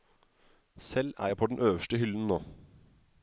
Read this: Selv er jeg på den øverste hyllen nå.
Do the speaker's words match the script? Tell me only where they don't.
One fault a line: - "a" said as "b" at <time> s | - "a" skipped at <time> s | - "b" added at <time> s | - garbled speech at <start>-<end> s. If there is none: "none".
none